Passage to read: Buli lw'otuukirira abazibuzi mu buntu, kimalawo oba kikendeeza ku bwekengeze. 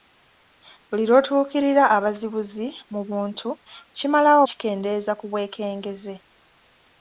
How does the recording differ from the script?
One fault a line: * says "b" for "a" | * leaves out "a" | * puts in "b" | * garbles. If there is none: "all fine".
* leaves out "oba"